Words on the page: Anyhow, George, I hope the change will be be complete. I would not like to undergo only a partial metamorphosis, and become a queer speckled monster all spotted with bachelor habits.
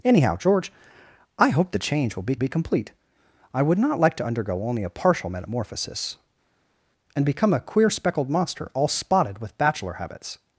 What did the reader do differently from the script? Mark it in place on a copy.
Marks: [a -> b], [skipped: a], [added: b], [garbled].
Anyhow, George, I hope the change will be be complete. I would not like to undergo only a partial metamorphosis, and become a queer speckled monster all spotted with bachelor habits.